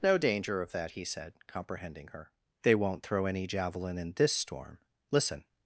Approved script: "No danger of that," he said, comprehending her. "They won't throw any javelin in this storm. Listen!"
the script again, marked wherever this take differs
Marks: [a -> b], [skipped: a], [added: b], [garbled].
"No danger of that," he said, comprehending her. "They won't throw any javelin in this storm. Listen!"